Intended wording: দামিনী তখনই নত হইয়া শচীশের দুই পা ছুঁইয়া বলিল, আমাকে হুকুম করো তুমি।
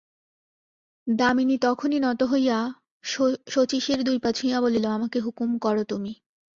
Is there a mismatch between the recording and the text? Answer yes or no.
no